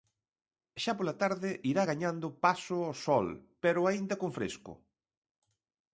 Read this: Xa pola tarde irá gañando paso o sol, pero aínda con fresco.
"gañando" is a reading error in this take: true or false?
false